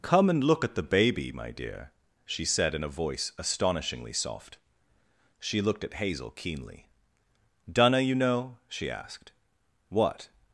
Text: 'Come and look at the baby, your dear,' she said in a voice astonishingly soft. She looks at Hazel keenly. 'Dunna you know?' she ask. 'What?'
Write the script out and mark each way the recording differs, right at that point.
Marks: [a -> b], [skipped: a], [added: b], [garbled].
'Come and look at the baby, [your -> my] dear,' she said in a voice astonishingly soft. She [looks -> looked] at Hazel keenly. 'Dunna you know?' she [ask. -> asked] 'What?'